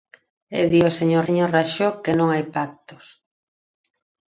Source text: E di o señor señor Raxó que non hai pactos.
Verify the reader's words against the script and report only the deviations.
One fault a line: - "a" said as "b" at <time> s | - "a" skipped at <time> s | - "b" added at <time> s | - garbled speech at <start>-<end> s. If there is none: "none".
none